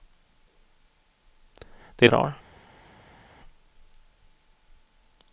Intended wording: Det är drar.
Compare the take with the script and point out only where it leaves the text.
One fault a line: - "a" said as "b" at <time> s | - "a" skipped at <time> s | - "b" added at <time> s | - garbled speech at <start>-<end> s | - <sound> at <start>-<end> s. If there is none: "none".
none